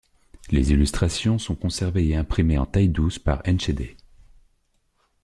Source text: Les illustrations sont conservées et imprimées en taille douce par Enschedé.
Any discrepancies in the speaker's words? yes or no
no